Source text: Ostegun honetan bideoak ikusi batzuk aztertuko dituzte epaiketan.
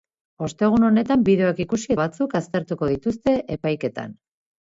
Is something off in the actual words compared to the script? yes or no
no